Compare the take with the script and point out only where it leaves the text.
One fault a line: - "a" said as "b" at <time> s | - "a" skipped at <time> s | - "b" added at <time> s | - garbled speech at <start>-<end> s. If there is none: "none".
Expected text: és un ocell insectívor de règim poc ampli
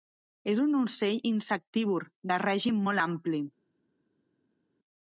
- "poc" said as "molt" at 2.9 s